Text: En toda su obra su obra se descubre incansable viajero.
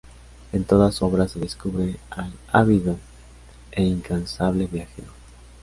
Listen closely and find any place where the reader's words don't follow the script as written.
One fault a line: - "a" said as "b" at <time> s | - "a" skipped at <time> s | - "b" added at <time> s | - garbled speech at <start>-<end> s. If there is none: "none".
- "su obra se descubre" said as "se descubre al ávido e" at 1.3 s